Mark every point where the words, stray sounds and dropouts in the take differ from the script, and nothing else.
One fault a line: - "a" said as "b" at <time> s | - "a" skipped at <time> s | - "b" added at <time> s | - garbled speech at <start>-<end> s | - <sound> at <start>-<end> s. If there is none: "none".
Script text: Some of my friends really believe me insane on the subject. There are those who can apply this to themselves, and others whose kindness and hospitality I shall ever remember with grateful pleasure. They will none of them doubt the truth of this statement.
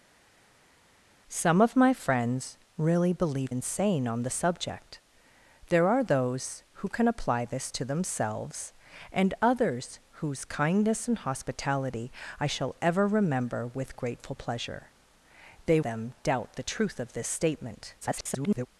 - "me" skipped at 3.5 s
- "will none of" skipped at 15.8 s
- garbled speech at 18.0-18.7 s